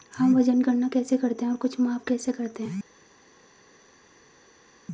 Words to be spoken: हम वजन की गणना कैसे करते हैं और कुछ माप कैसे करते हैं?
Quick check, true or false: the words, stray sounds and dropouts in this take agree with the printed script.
false